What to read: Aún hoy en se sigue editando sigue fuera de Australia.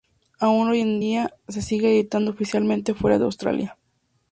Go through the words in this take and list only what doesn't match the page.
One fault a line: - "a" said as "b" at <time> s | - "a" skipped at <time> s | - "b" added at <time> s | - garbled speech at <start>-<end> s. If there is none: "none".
- "día" added at 1.0 s
- "sigue" said as "oficialmente" at 2.3 s